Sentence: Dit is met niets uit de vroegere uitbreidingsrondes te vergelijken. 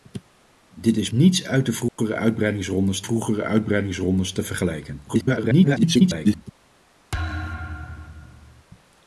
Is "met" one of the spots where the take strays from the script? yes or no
yes